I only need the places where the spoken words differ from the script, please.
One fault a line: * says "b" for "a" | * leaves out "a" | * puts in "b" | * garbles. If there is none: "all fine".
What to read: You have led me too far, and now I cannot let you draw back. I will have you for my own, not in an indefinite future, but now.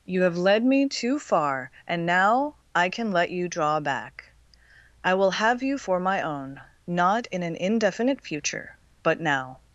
* says "can" for "cannot"